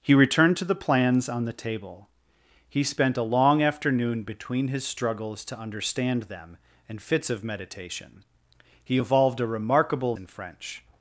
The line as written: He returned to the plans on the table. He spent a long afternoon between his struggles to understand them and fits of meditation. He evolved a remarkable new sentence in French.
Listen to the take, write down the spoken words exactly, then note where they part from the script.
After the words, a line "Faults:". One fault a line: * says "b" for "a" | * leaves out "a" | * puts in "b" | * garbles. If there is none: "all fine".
He returned to the plans on the table. He spent a long afternoon between his struggles to understand them and fits of meditation. He evolved a remarkable in French.
Faults:
* leaves out "new sentence"